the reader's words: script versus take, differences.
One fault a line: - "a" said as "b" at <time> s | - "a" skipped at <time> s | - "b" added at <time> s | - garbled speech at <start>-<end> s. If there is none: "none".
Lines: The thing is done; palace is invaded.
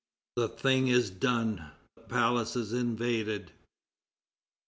none